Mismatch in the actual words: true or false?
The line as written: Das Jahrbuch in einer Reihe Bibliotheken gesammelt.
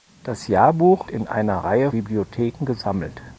false